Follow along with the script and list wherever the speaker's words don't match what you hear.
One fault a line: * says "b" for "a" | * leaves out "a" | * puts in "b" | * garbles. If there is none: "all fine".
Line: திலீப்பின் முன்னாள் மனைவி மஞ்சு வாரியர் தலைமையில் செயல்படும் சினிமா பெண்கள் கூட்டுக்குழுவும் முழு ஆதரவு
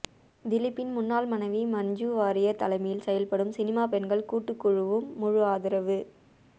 all fine